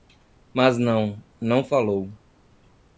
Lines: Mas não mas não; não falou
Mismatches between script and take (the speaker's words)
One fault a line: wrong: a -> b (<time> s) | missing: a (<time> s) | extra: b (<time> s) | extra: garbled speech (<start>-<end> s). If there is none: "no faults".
missing: mas não (1.2 s)